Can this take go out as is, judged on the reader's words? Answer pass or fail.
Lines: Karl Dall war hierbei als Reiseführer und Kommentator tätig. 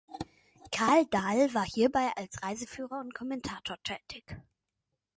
pass